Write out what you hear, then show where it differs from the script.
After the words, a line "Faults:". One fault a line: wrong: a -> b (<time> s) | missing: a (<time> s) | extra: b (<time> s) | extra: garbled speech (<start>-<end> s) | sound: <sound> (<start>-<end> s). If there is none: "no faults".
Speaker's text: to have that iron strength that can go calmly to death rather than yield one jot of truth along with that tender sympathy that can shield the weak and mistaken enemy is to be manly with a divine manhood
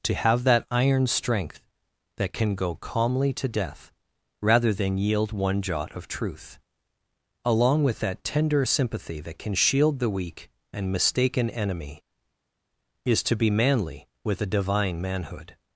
to have that iron strength that can go calmly to death rather than yield one jot of truth along with that tender sympathy that can shield the weak and mistaken enemy is to be manly with a divine manhood
Faults:
no faults